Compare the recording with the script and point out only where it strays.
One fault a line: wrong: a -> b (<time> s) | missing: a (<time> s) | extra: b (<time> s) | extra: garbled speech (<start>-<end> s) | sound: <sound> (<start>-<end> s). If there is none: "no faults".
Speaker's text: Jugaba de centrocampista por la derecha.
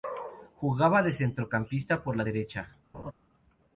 sound: laugh (2.9-3.1 s)